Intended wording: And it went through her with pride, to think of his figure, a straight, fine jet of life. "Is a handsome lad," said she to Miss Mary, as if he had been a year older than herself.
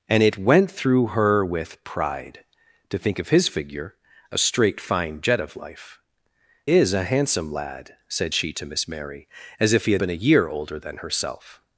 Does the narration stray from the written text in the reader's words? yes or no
no